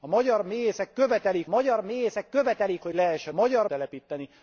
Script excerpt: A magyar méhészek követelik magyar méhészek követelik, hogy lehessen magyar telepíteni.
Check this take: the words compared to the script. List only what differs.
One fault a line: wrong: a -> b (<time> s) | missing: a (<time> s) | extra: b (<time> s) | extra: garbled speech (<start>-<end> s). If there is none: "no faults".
no faults